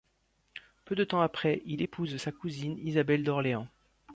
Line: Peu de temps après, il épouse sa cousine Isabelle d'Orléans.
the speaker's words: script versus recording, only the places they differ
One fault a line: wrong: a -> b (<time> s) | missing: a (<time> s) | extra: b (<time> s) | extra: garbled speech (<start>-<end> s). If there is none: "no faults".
no faults